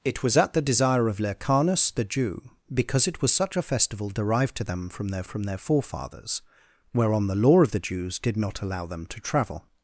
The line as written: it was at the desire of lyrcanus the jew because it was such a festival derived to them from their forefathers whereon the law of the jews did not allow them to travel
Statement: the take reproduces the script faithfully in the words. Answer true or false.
false